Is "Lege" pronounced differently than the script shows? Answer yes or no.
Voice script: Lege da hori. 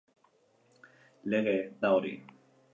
no